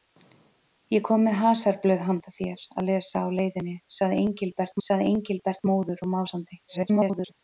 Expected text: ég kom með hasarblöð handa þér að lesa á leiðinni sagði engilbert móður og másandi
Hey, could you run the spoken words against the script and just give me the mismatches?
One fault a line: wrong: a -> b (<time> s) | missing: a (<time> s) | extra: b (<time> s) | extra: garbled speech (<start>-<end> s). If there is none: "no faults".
extra: sagði engilbert (4.9 s)
extra: garbled speech (6.7-7.3 s)